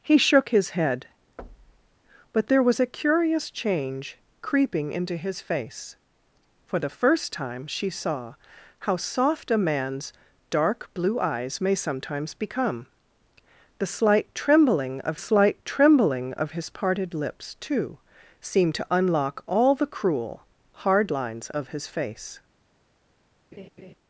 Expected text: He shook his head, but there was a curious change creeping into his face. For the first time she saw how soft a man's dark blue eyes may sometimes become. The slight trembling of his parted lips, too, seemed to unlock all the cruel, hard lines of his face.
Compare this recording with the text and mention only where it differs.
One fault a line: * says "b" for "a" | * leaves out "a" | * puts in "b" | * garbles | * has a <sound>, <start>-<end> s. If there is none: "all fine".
* has a thud, 1.4-2.0 s
* puts in "slight trembling of"
* has a laugh, 23.5-23.9 s